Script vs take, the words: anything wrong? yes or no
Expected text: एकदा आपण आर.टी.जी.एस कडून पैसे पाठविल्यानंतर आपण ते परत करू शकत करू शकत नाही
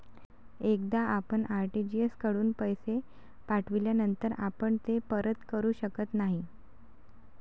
yes